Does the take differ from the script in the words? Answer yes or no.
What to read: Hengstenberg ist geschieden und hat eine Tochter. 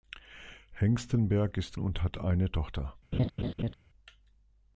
yes